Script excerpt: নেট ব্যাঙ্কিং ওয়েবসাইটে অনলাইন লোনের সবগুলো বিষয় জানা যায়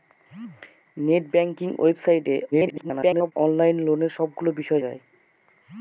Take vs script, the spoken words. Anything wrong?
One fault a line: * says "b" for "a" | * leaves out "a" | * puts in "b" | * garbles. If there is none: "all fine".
* garbles
* leaves out "জানা"